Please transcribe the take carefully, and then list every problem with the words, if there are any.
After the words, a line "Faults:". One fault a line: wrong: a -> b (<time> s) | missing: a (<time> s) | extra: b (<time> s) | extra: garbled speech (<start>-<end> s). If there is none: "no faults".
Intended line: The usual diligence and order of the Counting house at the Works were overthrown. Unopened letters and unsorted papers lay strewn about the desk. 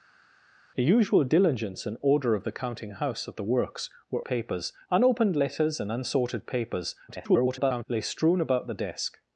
The usual diligence and order of the Counting house at the Works were papers. Unopened letters and unsorted papers [garbled] lay strewn about the desk.
Faults:
wrong: overthrown -> papers (4.2 s)
extra: garbled speech (7.1-7.8 s)